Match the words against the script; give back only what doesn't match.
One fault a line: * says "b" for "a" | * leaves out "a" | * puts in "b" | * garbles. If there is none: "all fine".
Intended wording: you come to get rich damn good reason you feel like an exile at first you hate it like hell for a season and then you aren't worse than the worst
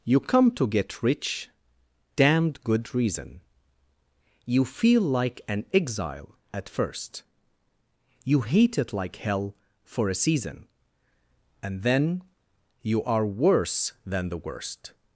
* says "damned" for "damn"
* says "are" for "aren't"